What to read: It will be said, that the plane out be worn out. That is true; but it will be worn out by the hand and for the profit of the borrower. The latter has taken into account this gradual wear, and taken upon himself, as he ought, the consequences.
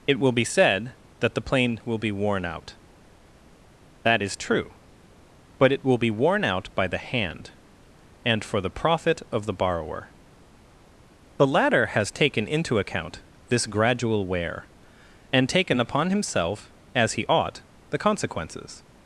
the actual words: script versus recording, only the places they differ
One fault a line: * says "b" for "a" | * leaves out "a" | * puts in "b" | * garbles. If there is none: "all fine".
* says "will" for "out"